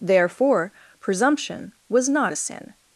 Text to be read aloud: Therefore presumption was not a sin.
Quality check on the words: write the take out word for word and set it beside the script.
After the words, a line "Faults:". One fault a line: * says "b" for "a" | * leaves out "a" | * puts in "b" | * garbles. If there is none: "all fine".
Therefore presumption was not a sin.
Faults:
all fine